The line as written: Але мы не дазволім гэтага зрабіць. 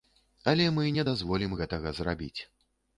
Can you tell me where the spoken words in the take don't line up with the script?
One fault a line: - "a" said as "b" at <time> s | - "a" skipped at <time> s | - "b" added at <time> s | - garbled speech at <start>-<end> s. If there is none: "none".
none